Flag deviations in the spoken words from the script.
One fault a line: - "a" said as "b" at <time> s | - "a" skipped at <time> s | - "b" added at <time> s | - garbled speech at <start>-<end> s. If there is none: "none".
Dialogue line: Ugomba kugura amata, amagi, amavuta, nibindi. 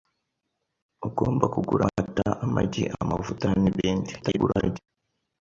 - garbled speech at 4.2-4.8 s